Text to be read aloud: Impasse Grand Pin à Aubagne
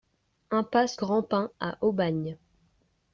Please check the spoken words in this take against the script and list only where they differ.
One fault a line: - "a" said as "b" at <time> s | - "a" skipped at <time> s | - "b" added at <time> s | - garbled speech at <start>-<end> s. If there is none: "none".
none